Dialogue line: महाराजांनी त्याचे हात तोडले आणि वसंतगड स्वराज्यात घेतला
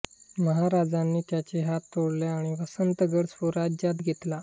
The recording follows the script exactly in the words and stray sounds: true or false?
true